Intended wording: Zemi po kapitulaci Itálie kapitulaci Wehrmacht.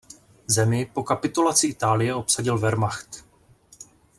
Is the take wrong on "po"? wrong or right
right